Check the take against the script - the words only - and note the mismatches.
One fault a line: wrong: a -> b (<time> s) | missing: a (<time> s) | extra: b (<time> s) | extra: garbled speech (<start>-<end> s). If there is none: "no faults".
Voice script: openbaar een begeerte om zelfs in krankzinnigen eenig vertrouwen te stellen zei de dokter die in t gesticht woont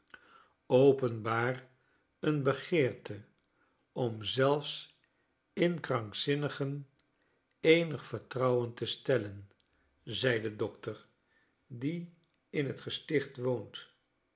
no faults